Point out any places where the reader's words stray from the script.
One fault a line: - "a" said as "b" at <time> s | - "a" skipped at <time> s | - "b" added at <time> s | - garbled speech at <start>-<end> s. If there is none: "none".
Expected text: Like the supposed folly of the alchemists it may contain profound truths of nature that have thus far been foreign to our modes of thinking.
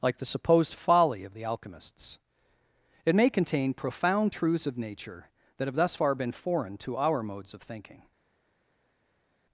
none